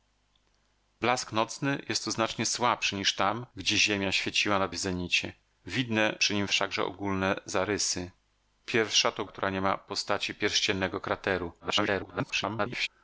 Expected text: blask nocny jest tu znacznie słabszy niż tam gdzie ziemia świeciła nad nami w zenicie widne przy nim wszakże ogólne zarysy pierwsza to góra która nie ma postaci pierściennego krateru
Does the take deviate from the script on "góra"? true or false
true